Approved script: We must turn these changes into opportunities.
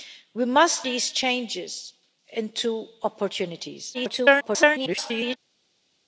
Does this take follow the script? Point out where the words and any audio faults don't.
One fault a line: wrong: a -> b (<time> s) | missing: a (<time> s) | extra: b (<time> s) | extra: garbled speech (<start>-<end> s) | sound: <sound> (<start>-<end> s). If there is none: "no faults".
missing: turn (0.9 s)
extra: garbled speech (3.9-5.4 s)